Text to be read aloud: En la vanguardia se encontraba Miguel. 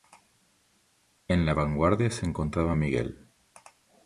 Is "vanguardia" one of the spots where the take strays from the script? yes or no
no